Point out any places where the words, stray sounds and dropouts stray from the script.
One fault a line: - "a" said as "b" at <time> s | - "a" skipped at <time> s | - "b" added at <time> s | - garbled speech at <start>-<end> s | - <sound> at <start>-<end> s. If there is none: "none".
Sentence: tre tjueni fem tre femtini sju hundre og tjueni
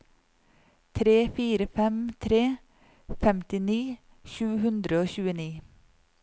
- "tjueni" said as "fire" at 1.4 s